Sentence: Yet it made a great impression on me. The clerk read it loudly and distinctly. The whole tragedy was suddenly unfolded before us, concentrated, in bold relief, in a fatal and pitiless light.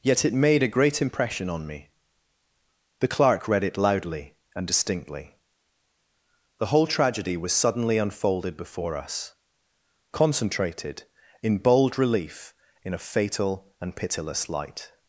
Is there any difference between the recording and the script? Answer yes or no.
no